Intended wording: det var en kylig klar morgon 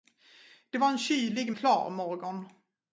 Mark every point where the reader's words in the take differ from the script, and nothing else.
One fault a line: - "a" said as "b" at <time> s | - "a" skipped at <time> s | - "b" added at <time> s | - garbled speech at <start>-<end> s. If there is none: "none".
none